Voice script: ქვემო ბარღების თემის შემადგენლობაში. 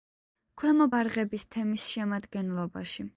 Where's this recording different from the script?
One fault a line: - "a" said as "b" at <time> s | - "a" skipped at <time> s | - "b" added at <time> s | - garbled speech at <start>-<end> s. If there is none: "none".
none